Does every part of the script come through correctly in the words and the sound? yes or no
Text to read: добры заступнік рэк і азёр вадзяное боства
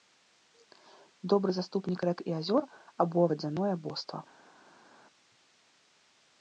no